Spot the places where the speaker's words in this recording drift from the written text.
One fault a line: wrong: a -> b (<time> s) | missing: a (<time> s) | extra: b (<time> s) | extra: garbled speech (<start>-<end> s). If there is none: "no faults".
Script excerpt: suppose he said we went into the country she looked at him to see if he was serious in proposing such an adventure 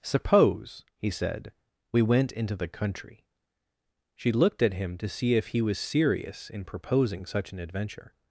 no faults